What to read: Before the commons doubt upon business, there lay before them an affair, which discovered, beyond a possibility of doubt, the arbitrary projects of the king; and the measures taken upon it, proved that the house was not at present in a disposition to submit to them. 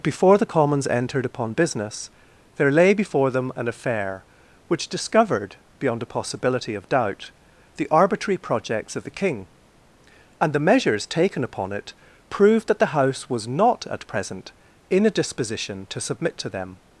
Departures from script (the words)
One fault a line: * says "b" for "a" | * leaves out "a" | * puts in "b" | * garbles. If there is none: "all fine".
* says "entered" for "doubt"